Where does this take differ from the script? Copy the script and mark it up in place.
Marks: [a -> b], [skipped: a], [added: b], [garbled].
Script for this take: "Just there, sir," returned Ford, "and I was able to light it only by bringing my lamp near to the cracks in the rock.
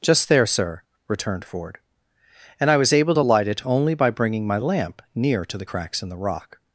"Just there, sir," returned Ford, "and I was able to light it only by bringing my lamp near to the cracks in the rock.